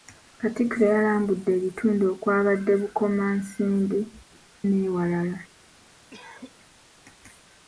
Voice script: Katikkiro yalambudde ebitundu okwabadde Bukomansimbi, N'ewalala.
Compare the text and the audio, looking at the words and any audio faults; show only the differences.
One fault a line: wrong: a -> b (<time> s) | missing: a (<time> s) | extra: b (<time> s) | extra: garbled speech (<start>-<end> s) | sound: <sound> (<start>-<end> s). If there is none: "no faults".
sound: cough (6.1-6.6 s)